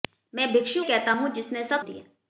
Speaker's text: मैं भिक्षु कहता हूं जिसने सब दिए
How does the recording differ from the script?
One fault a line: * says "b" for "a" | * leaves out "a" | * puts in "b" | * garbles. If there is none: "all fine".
all fine